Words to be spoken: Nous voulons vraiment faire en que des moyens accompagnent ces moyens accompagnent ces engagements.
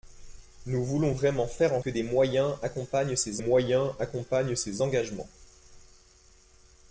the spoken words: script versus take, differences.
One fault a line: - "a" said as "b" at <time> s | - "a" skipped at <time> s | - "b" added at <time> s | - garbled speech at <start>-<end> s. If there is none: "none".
none